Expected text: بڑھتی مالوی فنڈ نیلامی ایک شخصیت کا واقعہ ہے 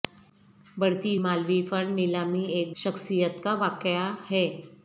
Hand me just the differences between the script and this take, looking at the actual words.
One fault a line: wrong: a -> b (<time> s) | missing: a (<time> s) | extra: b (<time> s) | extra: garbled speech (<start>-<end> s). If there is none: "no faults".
no faults